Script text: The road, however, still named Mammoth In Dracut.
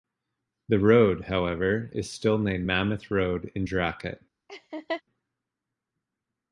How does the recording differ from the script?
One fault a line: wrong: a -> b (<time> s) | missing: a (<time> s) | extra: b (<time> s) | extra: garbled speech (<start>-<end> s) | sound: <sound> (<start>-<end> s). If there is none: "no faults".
extra: is (1.9 s)
extra: Road (3.1 s)
sound: laugh (4.5-5.0 s)